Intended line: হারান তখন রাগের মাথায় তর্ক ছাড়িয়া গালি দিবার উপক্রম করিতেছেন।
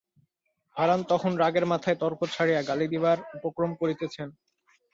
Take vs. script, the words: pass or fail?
pass